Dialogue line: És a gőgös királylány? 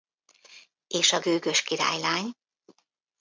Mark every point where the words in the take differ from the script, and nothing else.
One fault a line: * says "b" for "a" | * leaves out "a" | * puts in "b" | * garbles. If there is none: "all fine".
all fine